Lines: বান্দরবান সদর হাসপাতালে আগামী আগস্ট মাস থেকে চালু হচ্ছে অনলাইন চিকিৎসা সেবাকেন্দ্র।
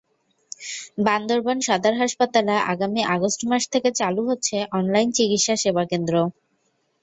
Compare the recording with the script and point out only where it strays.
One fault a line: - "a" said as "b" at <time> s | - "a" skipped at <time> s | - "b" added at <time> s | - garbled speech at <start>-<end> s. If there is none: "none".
none